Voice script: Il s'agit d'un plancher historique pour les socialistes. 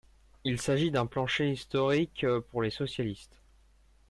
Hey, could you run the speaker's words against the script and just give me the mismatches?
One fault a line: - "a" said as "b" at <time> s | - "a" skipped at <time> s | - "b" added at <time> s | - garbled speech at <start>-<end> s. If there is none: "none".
none